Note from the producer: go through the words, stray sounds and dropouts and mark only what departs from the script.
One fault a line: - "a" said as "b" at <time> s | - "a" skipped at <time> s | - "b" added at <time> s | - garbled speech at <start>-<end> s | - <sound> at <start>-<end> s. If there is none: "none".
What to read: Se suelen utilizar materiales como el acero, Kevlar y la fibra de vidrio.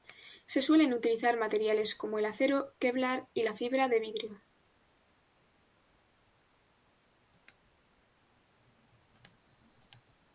none